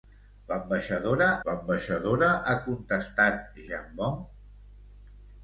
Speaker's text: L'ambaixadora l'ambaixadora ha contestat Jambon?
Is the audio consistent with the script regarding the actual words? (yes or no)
yes